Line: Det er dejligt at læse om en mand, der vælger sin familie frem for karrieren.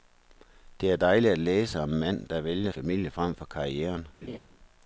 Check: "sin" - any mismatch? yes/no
yes